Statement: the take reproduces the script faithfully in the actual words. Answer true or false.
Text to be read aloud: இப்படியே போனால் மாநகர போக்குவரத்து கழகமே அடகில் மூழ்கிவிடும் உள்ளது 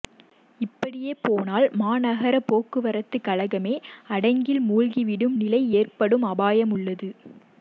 false